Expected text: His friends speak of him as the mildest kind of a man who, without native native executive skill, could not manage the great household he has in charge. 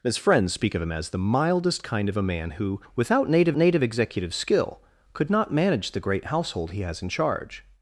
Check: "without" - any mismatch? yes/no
no